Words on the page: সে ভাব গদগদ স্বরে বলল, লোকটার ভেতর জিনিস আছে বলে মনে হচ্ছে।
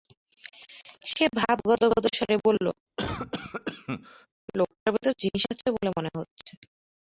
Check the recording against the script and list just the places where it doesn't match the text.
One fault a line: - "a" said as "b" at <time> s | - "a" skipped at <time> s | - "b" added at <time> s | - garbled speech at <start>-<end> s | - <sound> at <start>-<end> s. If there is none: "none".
- cough at 3.0-4.3 s